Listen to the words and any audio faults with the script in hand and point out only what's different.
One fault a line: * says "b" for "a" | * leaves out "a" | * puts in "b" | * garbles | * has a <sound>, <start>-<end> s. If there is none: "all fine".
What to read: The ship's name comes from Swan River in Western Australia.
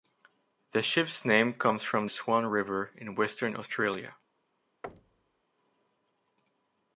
* has a thud, 4.8-5.4 s